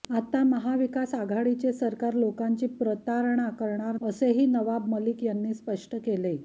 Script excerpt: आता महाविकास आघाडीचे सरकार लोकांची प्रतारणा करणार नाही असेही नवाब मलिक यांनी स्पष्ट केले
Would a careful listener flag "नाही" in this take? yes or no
yes